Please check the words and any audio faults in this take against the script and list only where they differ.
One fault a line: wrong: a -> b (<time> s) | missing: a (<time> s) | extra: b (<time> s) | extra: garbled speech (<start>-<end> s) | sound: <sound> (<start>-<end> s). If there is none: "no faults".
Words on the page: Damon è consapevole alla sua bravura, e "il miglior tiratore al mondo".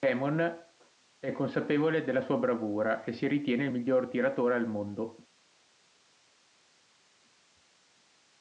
wrong: alla -> della (2.0 s)
extra: si ritiene (3.1 s)